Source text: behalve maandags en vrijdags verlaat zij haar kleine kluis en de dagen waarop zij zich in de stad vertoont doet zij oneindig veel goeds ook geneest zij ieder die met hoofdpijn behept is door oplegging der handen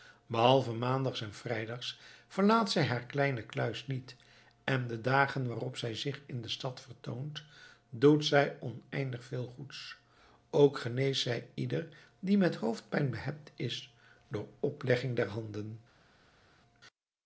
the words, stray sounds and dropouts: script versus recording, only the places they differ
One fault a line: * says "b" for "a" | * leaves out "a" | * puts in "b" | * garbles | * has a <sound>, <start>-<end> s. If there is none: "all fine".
* puts in "niet"